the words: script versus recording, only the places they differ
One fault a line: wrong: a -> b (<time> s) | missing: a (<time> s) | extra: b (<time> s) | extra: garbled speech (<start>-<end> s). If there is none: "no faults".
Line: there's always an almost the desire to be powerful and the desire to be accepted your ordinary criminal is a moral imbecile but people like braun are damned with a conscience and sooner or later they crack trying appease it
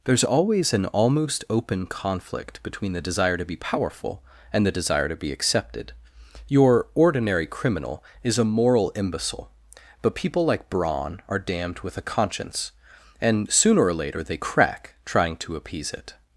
extra: open conflict between (1.5 s)
extra: to (15.4 s)